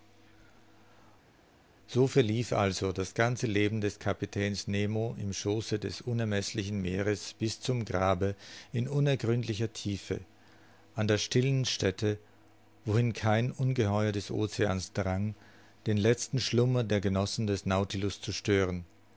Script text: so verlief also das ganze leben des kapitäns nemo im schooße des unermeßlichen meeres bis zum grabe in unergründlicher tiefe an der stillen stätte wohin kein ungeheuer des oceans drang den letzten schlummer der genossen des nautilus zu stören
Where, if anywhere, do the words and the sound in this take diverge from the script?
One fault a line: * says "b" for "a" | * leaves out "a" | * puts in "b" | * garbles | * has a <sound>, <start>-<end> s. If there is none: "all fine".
all fine